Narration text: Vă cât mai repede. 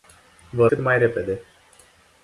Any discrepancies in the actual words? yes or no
no